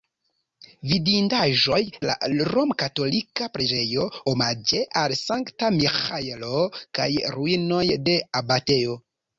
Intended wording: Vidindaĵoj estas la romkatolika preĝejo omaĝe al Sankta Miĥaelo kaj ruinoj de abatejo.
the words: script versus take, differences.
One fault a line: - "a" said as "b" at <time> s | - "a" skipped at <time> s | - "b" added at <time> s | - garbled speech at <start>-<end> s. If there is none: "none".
- "estas" skipped at 1.8 s